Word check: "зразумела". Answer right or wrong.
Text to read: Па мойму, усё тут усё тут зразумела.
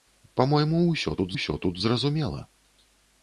right